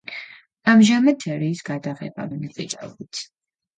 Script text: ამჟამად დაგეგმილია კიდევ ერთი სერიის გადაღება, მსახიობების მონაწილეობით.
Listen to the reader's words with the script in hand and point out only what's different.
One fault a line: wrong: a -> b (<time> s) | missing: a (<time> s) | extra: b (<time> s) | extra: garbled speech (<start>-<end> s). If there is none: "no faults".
missing: დაგეგმილია კიდევ ერთი (1.2 s)
missing: მსახიობების (2.3 s)